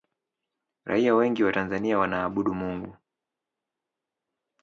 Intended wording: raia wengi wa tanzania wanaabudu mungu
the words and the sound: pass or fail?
pass